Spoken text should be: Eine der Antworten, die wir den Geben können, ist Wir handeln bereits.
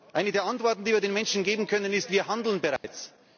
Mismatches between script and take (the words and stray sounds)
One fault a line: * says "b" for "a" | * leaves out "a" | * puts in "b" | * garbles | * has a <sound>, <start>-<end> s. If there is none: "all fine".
* puts in "Menschen"
* has a dropout, 2.8-2.8 s